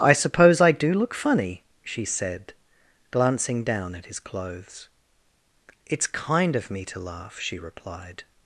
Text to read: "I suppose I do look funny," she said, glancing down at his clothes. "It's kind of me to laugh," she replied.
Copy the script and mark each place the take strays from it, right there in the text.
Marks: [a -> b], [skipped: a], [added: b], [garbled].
"I suppose I do look funny," she said, glancing down at his clothes. "It's kind of me to laugh," she replied.